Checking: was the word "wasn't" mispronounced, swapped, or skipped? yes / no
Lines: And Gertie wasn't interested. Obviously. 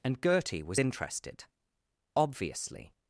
yes